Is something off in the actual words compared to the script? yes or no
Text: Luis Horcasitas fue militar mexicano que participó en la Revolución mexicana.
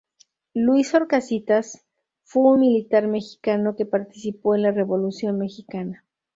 no